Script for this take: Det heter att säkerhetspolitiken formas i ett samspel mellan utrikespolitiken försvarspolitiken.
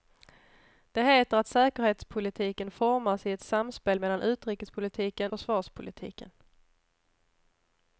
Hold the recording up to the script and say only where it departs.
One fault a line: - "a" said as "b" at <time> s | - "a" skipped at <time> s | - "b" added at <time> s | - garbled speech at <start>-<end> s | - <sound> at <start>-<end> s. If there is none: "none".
none